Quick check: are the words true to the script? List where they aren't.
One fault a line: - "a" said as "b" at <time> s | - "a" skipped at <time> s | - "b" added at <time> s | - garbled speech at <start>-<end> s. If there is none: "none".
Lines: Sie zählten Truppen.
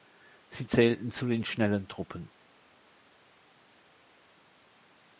- "zu den Schnellen" added at 1.1 s